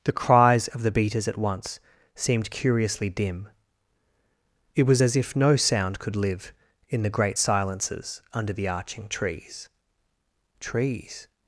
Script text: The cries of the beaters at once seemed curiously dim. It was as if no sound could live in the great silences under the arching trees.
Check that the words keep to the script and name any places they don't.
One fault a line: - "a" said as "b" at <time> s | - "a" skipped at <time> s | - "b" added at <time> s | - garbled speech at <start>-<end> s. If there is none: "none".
- "trees" added at 10.6 s